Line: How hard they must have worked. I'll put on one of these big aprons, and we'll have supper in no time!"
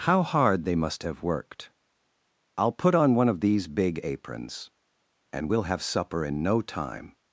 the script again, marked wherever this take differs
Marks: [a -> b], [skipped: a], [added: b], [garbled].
How hard they must have worked. I'll put on one of these big aprons, and we'll have supper in no time!"